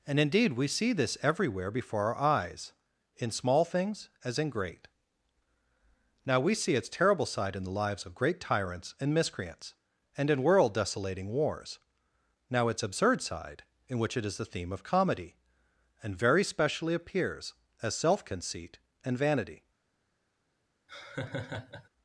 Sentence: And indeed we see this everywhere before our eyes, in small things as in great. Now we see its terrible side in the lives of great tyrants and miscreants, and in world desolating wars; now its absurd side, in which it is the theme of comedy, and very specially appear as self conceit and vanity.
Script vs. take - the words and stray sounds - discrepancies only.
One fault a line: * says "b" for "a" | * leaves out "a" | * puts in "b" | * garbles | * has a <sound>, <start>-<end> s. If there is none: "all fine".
* says "appears" for "appear"
* has a laugh, 20.9-21.9 s